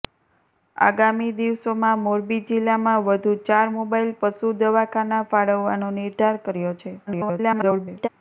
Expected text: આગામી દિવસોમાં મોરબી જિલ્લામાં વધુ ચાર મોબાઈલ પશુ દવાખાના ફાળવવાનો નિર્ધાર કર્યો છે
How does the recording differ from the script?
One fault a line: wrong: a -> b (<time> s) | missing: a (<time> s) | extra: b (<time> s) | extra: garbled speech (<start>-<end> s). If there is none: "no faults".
extra: garbled speech (7.1-8.1 s)